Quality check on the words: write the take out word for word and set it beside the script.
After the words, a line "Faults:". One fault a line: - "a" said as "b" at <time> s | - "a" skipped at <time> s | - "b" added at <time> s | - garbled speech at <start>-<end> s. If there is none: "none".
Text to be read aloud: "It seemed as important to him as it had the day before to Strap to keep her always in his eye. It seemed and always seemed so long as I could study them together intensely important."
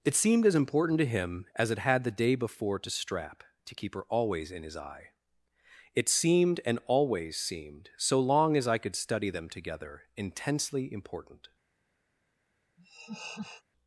"It seemed as important to him as it had the day before to Strap to keep her always in his eye. It seemed and always seemed so long as I could study them together intensely important."
Faults:
none